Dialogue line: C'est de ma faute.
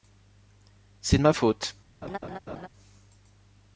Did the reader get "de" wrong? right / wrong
right